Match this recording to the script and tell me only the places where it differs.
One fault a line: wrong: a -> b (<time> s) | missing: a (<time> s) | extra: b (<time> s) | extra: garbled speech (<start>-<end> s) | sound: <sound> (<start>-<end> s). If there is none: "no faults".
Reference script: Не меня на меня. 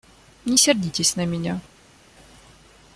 wrong: меня -> сердитесь (0.5 s)